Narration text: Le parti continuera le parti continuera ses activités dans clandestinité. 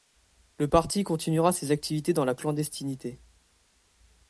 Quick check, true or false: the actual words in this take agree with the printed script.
false